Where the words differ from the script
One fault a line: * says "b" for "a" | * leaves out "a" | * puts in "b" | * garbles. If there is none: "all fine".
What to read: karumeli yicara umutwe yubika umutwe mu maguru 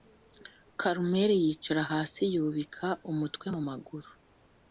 * says "hasi" for "umutwe"